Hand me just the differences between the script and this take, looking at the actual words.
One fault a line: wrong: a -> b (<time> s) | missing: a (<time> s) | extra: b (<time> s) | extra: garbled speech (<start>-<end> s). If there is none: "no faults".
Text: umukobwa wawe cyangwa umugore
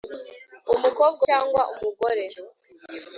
missing: wawe (1.2 s)